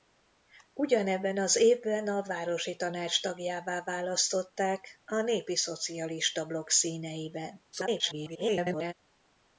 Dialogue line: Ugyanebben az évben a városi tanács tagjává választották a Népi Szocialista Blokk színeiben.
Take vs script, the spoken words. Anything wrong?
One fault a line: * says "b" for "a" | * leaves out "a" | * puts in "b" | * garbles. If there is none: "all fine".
* garbles